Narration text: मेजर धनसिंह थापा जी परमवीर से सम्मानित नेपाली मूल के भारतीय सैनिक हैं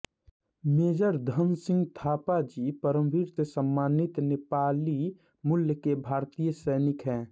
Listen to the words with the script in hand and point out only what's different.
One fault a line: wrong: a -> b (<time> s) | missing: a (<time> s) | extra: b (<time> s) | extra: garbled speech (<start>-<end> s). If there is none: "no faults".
no faults